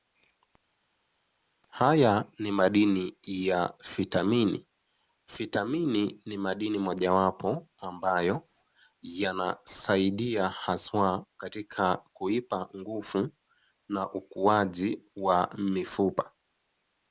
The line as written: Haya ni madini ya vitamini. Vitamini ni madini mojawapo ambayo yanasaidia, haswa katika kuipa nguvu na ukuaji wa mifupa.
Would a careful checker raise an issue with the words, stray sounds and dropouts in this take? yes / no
no